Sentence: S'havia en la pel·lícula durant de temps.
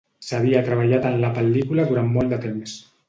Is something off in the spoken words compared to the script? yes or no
yes